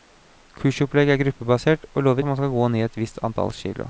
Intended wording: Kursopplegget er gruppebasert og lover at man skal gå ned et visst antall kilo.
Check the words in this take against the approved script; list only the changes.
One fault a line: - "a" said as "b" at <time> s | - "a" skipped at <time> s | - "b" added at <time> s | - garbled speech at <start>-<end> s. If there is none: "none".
none